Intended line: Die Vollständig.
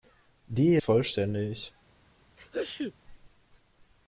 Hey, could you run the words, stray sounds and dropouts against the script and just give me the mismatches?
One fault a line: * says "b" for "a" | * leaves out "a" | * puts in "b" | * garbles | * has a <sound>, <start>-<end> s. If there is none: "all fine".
* has a sneeze, 2.4-2.9 s